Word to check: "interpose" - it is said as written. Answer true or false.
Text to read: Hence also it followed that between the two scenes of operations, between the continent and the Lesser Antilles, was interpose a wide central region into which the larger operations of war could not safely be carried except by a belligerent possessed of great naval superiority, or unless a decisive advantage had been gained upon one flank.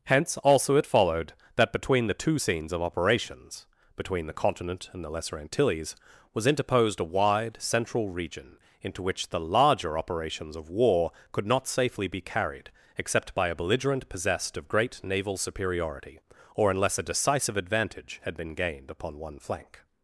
false